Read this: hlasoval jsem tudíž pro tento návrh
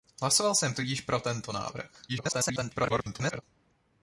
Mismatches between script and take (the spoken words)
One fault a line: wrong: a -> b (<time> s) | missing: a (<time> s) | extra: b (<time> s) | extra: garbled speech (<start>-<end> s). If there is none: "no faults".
extra: garbled speech (2.1-3.4 s)